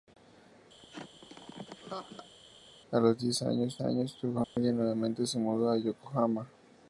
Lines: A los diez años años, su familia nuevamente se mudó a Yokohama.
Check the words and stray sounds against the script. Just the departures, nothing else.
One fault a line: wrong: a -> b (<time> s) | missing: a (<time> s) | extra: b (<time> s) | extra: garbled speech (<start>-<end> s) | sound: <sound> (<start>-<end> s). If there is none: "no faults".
sound: laugh (0.8-2.3 s)
sound: dropout (4.4-4.6 s)